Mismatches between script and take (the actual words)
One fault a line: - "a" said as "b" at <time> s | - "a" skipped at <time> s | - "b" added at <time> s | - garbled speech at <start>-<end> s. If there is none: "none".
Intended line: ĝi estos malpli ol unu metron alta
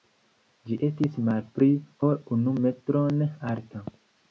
- "estos" said as "estis" at 0.9 s